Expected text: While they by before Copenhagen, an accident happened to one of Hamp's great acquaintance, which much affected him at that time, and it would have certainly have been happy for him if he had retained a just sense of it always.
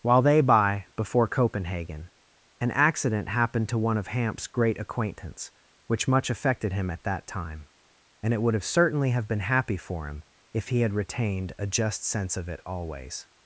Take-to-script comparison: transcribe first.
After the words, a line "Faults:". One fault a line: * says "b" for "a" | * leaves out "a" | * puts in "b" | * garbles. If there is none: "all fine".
While they by before Copenhagen, an accident happened to one of Hamp's great acquaintance, which much affected him at that time, and it would have certainly have been happy for him if he had retained a just sense of it always.
Faults:
all fine